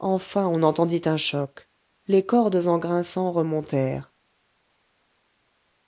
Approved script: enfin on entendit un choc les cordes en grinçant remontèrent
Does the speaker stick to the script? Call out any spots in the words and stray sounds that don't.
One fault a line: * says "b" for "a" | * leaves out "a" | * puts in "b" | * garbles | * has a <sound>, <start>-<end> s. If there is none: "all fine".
all fine